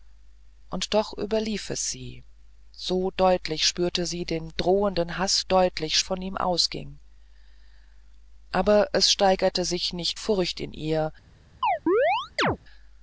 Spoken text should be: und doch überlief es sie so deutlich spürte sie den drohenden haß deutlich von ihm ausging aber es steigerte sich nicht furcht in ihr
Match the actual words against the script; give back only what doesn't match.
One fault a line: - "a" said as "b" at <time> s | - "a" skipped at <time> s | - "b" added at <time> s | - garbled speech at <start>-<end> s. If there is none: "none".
none